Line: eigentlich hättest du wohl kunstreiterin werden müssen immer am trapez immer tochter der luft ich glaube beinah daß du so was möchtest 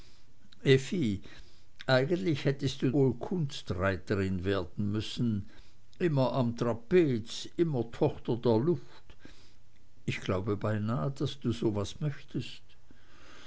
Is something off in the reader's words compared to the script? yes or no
no